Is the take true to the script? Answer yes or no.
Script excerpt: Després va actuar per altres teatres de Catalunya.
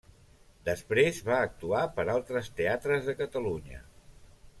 yes